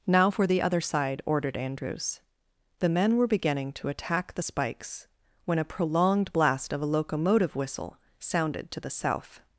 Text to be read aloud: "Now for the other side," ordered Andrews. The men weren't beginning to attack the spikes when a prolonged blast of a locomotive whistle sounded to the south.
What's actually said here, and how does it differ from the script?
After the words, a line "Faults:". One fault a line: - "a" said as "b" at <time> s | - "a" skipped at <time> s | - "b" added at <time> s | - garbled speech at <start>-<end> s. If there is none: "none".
"Now for the other side," ordered Andrews. The men were beginning to attack the spikes when a prolonged blast of a locomotive whistle sounded to the south.
Faults:
- "weren't" said as "were" at 3.2 s